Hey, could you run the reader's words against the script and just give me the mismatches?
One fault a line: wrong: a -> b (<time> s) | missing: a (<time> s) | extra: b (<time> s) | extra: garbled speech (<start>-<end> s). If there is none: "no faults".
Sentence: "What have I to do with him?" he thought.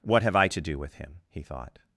no faults